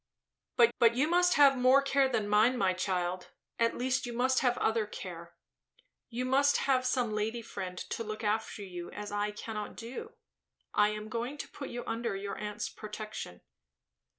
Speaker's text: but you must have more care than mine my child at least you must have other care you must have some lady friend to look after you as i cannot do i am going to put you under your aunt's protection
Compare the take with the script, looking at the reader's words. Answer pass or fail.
fail